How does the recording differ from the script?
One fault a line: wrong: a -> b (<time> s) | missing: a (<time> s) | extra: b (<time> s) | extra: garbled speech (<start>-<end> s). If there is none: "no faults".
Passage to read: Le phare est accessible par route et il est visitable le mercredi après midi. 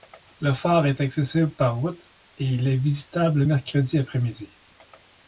no faults